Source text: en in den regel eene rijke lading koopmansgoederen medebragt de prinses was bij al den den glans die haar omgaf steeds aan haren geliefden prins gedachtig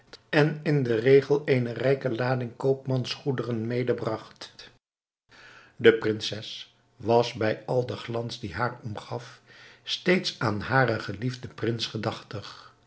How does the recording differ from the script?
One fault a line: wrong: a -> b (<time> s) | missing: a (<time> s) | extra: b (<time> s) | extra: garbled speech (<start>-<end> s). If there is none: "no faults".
missing: den (8.0 s)